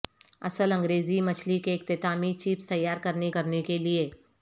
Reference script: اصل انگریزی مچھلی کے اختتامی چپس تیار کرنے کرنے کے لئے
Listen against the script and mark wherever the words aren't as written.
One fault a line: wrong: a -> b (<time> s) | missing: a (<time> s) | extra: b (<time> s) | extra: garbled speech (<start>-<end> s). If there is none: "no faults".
no faults